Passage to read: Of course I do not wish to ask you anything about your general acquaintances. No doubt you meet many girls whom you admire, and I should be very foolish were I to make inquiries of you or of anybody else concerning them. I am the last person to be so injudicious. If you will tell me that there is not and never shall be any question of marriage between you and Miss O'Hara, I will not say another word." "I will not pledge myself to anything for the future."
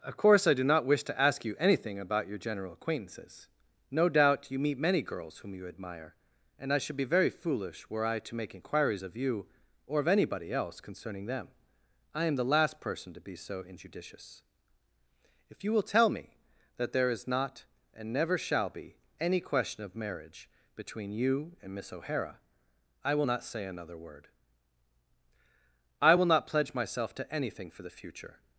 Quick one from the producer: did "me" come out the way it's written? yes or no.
yes